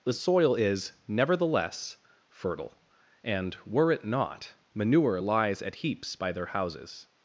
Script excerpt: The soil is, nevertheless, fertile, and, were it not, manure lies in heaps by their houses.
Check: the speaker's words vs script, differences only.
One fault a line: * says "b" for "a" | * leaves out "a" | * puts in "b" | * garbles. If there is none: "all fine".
* says "at" for "in"